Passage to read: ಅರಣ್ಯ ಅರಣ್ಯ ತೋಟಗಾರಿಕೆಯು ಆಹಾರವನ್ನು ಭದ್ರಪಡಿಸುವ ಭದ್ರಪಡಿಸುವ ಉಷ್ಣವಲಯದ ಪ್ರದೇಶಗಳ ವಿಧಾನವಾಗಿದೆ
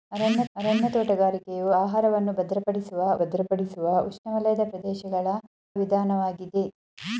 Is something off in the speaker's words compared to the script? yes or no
no